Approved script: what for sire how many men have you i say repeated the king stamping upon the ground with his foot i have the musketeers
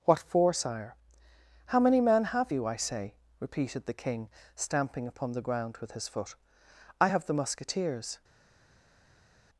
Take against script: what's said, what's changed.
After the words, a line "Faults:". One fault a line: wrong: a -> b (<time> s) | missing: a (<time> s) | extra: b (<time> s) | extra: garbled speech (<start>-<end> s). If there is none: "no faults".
what for sire how many men have you i say repeated the king stamping upon the ground with his foot i have the musketeers
Faults:
no faults